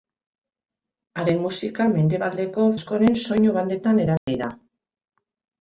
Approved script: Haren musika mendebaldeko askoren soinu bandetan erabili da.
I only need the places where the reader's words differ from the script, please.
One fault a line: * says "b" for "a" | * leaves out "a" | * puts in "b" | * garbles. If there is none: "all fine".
all fine